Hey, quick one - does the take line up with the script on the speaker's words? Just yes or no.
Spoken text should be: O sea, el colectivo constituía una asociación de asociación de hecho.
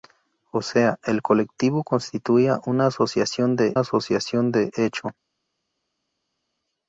yes